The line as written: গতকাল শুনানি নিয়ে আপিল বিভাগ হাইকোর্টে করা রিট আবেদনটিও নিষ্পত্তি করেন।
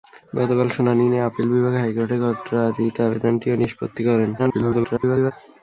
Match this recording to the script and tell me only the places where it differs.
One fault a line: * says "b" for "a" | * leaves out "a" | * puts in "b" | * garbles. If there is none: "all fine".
* garbles